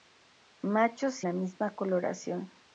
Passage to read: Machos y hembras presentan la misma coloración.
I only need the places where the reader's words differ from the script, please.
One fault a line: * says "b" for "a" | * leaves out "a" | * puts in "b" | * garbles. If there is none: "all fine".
* leaves out "y hembras presentan"